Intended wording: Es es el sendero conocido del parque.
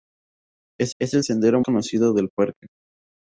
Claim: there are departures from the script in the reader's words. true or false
false